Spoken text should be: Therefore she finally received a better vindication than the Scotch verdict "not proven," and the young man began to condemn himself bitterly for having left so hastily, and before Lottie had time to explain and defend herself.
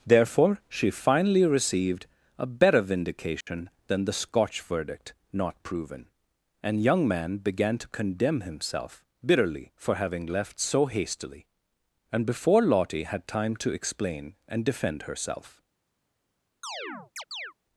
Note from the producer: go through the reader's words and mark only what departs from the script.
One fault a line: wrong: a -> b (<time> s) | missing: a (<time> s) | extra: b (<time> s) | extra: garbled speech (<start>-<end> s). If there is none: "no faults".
missing: the (6.8 s)